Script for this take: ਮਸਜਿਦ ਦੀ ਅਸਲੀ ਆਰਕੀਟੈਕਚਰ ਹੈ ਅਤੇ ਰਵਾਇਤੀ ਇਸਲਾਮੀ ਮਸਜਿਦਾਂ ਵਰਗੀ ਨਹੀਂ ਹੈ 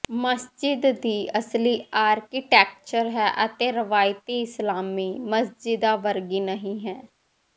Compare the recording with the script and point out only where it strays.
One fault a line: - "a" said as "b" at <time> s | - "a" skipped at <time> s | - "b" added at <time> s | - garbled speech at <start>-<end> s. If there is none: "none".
none